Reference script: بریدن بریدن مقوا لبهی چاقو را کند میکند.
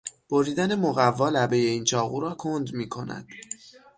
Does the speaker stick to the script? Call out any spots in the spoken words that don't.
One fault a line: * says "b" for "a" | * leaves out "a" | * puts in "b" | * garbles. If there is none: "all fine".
* leaves out "بریدن"
* puts in "این"